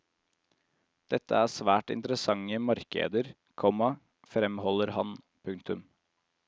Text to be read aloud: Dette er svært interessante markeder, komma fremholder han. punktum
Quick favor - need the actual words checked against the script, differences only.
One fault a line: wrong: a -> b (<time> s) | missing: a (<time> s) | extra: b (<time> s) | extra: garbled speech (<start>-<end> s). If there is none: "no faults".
no faults